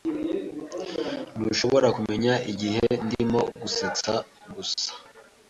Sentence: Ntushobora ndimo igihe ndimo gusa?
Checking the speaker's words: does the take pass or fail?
fail